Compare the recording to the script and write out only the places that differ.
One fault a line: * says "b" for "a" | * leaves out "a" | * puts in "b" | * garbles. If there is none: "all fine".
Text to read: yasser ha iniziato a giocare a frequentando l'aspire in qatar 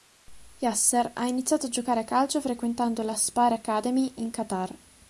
* puts in "calcio"
* puts in "academy"